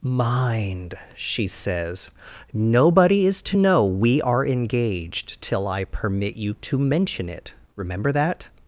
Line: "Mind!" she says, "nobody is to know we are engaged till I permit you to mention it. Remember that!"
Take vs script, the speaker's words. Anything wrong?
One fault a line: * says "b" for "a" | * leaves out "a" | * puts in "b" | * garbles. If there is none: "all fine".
all fine